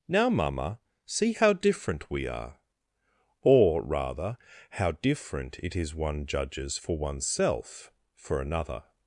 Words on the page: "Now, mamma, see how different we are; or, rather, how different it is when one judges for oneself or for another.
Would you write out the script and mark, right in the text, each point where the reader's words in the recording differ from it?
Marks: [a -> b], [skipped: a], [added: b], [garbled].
"Now, mamma, see how different we are; or, rather, how different it is [skipped: when] one judges for oneself [skipped: or] for another.